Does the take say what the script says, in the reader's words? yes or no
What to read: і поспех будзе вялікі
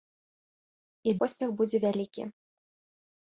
yes